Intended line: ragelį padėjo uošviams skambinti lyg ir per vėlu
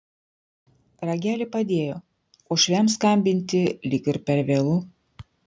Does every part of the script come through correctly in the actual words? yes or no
yes